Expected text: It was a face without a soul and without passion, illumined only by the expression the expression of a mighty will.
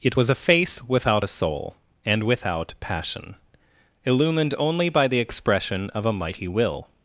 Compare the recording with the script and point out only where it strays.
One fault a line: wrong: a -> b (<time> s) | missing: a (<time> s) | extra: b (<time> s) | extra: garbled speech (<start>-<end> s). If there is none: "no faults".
missing: the expression (5.9 s)